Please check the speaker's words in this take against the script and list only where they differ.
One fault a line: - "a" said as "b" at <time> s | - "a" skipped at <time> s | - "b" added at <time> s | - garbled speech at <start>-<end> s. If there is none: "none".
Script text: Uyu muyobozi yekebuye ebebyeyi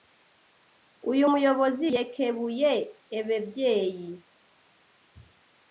none